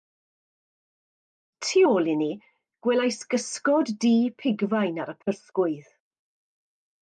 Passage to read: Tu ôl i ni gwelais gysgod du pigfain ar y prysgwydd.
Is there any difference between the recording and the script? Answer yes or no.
no